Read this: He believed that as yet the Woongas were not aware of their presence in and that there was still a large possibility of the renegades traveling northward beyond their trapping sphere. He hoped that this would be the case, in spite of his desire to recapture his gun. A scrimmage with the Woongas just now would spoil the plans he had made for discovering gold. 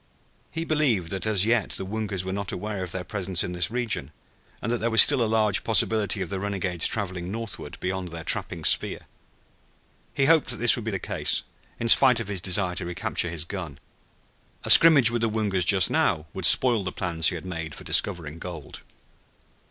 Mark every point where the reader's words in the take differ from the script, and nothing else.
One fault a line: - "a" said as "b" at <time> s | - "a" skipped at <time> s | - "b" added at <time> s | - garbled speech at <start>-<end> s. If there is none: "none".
- "this region" added at 3.5 s